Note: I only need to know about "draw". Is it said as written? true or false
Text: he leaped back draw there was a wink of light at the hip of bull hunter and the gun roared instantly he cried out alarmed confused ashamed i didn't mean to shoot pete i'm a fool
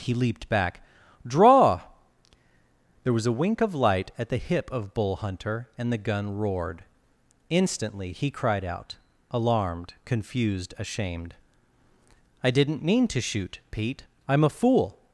true